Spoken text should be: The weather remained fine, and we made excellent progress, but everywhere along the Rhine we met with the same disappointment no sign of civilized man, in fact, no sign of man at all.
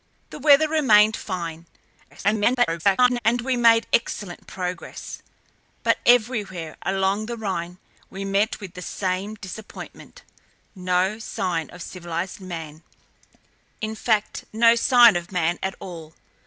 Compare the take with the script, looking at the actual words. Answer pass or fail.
fail